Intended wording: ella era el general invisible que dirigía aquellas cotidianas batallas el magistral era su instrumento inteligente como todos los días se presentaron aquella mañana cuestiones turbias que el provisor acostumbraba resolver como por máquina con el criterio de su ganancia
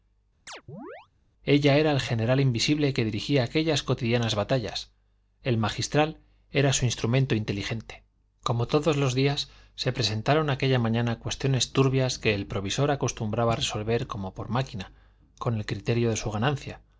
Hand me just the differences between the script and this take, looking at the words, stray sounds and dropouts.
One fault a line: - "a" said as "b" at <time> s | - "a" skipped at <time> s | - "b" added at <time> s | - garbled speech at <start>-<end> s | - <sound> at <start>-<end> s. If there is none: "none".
- chirp at 0.5-1.1 s